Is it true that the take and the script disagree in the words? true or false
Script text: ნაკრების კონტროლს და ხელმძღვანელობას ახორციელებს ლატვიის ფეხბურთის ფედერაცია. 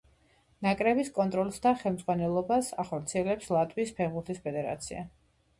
false